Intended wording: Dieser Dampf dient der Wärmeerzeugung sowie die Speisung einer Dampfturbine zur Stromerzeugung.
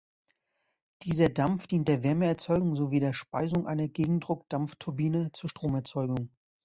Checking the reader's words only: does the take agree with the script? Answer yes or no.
no